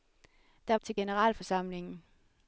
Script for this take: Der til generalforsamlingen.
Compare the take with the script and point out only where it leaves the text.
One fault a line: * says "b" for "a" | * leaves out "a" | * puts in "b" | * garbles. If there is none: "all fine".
all fine